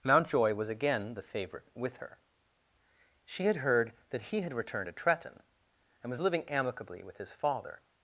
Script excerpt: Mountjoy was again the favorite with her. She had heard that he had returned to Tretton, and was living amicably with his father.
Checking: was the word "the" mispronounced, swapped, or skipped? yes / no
no